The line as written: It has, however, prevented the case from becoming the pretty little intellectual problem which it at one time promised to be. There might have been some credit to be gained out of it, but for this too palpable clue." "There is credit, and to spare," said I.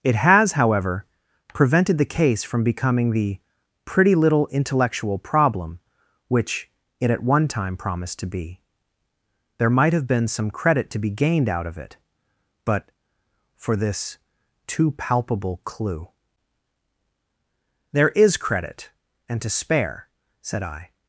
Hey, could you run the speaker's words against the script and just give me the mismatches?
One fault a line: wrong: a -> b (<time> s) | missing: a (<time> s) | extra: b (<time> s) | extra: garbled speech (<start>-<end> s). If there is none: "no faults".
no faults